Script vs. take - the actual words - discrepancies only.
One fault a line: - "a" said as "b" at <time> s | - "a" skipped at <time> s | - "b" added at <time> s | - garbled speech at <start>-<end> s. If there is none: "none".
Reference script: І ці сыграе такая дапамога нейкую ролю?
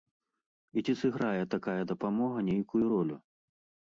none